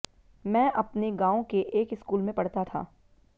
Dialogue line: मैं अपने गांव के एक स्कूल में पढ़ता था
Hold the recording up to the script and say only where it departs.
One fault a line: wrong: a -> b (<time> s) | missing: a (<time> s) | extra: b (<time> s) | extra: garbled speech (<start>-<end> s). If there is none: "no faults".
no faults